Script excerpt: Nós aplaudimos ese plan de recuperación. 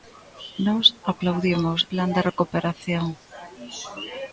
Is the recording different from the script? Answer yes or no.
yes